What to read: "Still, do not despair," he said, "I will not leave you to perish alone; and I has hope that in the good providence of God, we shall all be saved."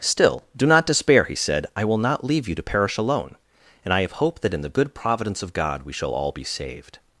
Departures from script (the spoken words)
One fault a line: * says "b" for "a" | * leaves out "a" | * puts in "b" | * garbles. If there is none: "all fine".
* says "have" for "has"